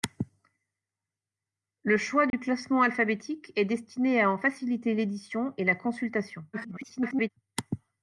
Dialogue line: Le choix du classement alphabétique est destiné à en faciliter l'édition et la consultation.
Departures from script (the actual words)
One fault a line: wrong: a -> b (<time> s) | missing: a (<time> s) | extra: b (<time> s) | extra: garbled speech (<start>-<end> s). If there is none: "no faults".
extra: garbled speech (6.5-7.3 s)